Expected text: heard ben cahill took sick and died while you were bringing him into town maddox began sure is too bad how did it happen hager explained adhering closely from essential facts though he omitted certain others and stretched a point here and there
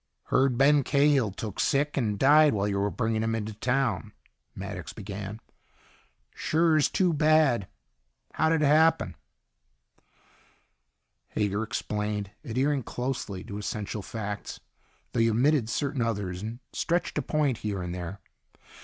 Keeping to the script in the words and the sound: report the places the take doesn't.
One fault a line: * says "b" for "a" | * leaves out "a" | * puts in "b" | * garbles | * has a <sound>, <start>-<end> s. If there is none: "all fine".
* says "to" for "from"